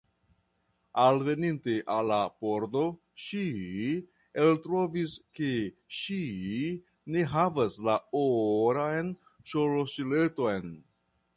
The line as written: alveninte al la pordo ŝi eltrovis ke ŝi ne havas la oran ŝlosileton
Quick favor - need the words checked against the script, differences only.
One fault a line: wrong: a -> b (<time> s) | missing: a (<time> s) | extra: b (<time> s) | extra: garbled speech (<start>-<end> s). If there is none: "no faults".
no faults